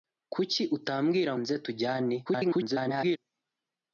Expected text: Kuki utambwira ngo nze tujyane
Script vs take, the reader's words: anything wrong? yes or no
yes